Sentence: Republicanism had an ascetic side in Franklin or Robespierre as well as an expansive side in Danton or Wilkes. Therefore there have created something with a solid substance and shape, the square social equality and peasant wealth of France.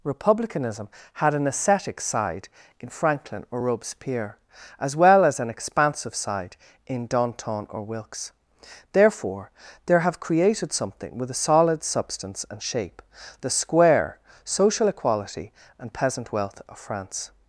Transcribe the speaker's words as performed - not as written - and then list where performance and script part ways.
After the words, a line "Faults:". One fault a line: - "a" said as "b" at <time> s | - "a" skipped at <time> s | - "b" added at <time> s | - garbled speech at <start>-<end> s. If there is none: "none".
Republicanism had an ascetic side in Franklin or Robespierre as well as an expansive side in Danton or Wilkes. Therefore there have created something with a solid substance and shape, the square social equality and peasant wealth of France.
Faults:
none